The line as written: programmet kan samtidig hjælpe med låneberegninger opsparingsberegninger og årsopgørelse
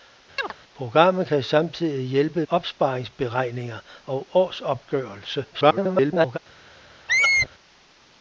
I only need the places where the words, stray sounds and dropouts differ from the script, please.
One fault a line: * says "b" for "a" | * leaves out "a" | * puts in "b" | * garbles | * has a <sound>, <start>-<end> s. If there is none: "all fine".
* has a chirp, 0.4-0.5 s
* leaves out "med låneberegninger"
* garbles
* has a squeak, 7.1-7.5 s